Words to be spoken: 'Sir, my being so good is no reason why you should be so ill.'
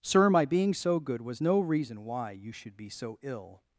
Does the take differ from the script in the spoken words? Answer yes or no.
yes